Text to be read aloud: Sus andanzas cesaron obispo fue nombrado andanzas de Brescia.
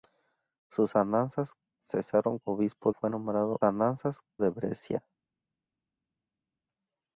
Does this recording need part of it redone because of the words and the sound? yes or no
no